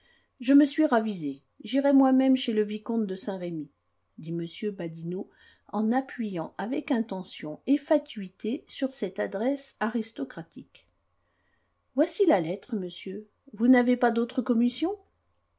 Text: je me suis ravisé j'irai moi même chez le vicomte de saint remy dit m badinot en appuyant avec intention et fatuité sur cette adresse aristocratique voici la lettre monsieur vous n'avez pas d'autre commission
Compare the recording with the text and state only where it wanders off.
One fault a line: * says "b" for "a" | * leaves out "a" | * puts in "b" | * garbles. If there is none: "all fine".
all fine